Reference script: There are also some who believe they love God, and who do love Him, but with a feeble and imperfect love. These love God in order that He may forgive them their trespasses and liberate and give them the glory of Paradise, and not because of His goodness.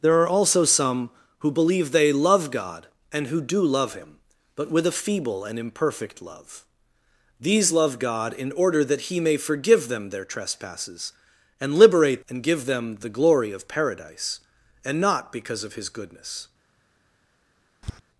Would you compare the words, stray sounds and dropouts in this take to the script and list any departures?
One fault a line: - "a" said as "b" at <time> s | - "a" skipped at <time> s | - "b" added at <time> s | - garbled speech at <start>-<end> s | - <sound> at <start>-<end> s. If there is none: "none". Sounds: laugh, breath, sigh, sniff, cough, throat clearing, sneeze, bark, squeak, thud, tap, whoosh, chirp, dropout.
- tap at 17.8-18.0 s